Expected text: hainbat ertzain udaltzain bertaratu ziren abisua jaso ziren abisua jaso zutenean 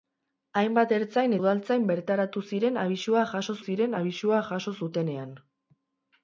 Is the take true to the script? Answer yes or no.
yes